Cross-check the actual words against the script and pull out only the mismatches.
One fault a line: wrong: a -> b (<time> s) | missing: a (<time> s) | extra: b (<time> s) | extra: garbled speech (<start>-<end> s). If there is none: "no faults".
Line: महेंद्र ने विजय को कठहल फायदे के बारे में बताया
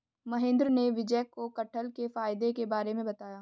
extra: के (2.0 s)